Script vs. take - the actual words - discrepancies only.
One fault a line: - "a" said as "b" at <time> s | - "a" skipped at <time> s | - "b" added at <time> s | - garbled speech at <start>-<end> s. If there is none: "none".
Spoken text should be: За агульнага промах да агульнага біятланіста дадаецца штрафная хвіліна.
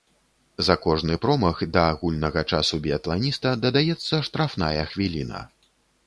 - "агульнага" said as "кожны" at 0.8 s
- "часу" added at 2.6 s